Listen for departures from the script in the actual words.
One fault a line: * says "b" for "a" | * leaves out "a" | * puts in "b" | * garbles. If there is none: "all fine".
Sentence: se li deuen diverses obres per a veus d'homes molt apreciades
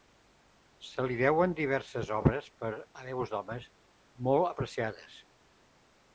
all fine